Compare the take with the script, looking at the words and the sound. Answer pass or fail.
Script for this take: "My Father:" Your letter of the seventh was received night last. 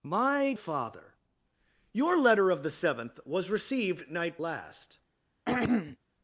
fail